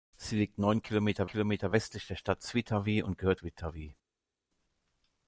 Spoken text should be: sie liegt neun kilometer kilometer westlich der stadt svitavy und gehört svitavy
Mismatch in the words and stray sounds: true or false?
false